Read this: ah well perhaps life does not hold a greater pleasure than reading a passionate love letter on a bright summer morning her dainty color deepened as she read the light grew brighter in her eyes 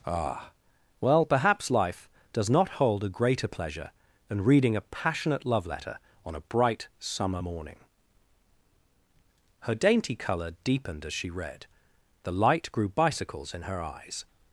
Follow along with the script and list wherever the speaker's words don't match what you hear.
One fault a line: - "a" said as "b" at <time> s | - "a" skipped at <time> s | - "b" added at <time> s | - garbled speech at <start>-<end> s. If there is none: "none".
- "brighter" said as "bicycles" at 12.9 s